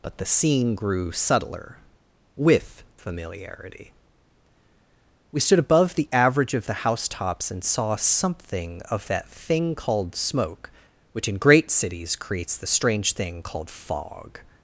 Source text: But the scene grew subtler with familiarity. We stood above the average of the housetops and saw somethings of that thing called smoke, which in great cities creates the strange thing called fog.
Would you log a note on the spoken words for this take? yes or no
yes